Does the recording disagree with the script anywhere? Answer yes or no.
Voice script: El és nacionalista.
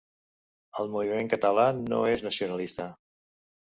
yes